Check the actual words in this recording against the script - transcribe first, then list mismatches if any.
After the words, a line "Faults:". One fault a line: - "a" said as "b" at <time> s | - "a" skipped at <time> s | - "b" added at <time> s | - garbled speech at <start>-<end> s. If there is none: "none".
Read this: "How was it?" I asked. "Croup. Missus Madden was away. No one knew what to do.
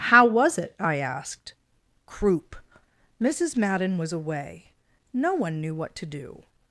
"How was it?" I asked. "Croup. Missus Madden was away. No one knew what to do.
Faults:
none